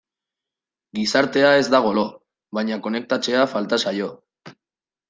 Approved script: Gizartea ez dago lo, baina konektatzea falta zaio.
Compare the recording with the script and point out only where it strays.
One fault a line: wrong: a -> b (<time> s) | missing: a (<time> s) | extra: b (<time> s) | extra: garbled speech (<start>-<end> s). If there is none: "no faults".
no faults